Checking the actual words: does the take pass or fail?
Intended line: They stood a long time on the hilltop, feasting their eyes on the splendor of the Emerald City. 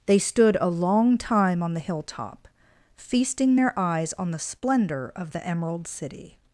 pass